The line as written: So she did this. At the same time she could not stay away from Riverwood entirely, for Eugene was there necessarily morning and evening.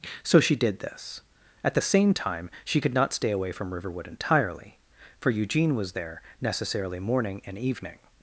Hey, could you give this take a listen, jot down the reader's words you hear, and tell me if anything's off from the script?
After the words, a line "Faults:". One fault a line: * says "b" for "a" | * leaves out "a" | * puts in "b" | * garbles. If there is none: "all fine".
So she did this. At the same time she could not stay away from Riverwood entirely, for Eugene was there necessarily morning and evening.
Faults:
all fine